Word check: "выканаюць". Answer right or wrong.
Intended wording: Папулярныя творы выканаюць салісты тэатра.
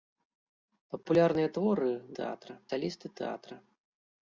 wrong